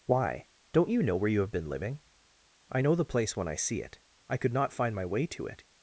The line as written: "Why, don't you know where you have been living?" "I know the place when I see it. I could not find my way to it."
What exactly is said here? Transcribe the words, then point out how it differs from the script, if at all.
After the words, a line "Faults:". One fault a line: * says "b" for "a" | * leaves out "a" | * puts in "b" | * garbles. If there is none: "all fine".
"Why, don't you know where you have been living?" "I know the place when I see it. I could not find my way to it."
Faults:
all fine